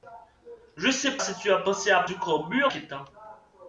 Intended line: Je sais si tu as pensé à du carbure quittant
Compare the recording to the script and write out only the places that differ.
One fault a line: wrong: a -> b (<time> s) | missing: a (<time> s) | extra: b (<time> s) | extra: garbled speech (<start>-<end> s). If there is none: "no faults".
no faults